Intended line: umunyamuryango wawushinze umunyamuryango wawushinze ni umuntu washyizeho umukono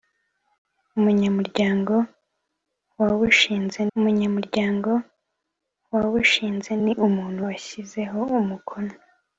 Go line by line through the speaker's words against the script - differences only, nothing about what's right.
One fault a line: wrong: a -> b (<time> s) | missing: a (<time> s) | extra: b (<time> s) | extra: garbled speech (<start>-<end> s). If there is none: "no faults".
no faults